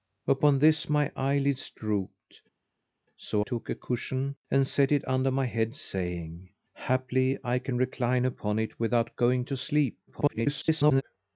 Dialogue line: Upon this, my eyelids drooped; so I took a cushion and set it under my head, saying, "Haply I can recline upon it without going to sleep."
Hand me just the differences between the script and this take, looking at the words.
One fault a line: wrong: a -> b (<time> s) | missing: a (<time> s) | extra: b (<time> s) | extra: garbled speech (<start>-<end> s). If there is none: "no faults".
missing: I (3.5 s)
extra: garbled speech (10.1-11.0 s)